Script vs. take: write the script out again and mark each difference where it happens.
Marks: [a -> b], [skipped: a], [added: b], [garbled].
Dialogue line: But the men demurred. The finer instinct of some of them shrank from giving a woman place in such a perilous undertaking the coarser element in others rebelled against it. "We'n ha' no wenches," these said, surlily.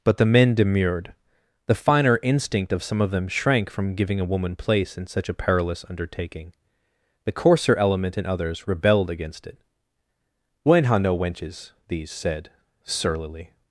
But the men demurred. The finer instinct of some of them shrank from giving a woman place in such a perilous undertaking the coarser element in others rebelled against it. "We'n ha' no wenches," these said, surlily.